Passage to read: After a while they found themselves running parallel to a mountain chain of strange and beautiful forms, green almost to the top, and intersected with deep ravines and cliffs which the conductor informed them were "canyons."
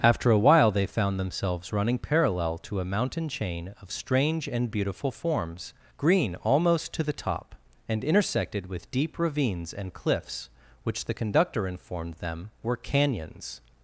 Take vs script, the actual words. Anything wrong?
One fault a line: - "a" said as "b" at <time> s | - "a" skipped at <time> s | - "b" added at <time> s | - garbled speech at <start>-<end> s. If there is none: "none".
none